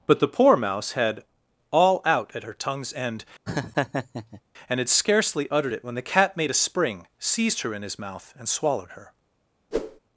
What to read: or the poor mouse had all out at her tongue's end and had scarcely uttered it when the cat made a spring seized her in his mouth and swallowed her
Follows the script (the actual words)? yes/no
no